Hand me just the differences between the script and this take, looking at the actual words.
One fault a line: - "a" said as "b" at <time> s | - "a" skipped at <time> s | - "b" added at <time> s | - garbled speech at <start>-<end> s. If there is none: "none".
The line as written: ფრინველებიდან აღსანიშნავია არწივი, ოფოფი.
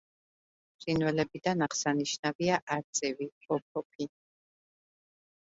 none